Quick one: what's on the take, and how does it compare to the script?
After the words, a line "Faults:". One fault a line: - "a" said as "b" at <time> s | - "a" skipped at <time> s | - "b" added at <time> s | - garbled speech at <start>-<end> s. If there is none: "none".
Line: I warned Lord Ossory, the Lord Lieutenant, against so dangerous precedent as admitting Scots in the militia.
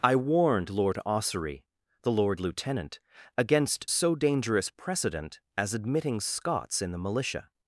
I warned Lord Ossory, the Lord Lieutenant, against so dangerous precedent as admitting Scots in the militia.
Faults:
none